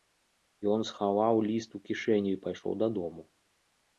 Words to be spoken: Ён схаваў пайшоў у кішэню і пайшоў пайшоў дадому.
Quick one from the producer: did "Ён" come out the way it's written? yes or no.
yes